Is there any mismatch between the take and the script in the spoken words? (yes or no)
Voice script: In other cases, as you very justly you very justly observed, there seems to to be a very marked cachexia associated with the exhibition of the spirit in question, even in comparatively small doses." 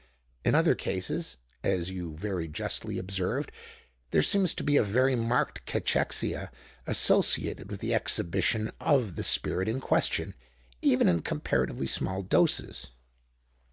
yes